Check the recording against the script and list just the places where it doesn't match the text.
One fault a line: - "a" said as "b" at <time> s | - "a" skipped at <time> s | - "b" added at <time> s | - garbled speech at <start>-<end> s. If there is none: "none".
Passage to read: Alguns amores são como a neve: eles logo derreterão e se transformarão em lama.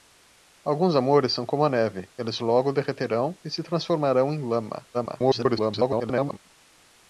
- garbled speech at 4.9-6.4 s